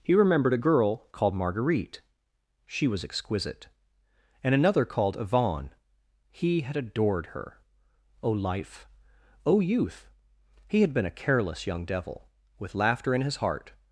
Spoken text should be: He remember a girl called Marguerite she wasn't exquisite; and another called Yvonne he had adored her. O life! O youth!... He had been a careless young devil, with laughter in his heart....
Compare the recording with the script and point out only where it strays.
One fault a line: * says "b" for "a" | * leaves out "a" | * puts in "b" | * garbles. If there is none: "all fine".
* says "remembered" for "remember"
* says "was" for "wasn't"